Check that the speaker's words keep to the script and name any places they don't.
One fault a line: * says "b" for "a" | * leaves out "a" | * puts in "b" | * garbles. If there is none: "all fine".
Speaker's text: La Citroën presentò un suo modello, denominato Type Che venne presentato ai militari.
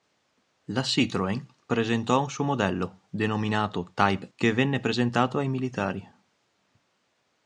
all fine